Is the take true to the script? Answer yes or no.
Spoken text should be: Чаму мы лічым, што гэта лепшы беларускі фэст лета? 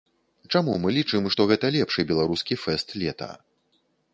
yes